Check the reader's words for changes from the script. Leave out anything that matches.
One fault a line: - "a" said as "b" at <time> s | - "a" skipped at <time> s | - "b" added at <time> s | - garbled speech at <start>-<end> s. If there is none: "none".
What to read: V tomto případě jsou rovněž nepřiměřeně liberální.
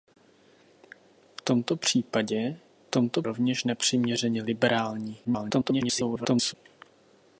- "jsou" said as "tomto" at 2.9 s
- garbled speech at 5.2-6.5 s